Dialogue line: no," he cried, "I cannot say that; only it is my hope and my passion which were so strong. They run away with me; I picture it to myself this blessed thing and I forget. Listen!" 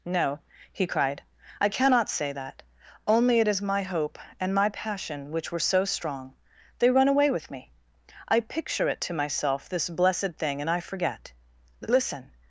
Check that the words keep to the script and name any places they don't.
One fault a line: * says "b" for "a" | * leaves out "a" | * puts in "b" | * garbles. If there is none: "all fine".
all fine